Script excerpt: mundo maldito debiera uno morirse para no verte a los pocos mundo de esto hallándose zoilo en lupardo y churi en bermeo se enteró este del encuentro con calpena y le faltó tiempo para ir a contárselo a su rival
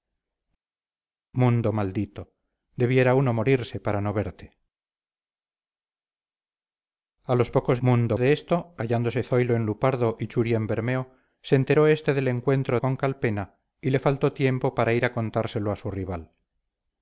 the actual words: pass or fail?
pass